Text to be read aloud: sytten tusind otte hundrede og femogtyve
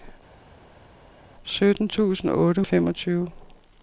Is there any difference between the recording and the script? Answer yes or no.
yes